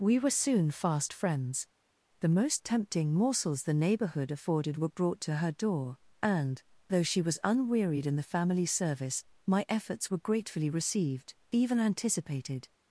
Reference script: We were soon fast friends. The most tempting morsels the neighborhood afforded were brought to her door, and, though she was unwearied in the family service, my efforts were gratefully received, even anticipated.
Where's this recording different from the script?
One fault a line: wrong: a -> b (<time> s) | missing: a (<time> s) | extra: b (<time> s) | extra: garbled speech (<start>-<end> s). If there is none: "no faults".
no faults